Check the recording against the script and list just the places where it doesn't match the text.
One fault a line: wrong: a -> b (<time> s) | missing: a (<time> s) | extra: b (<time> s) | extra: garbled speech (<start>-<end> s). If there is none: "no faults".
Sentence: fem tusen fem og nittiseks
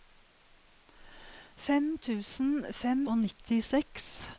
no faults